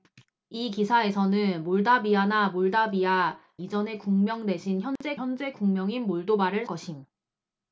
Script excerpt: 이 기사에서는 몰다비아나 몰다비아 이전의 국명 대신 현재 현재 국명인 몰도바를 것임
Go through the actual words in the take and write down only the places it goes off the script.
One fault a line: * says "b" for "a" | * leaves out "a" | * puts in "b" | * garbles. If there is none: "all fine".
all fine